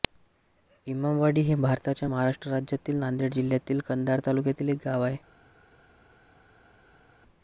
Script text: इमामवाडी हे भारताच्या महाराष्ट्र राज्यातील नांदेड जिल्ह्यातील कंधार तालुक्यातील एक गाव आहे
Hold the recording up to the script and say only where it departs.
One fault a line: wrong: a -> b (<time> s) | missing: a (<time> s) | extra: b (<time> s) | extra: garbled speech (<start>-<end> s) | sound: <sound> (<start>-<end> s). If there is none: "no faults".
no faults